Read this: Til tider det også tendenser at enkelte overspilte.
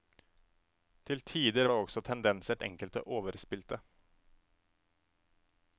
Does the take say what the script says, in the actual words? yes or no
yes